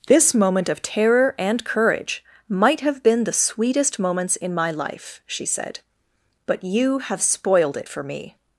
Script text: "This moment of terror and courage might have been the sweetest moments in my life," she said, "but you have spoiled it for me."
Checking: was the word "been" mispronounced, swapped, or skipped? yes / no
no